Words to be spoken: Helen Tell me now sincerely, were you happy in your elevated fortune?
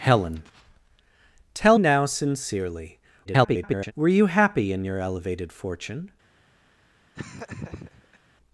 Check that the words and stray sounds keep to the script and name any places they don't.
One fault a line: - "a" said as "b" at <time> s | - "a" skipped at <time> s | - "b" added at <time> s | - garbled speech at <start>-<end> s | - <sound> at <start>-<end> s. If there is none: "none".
- "me" skipped at 1.8 s
- garbled speech at 3.2-3.9 s
- laugh at 7.1-8.2 s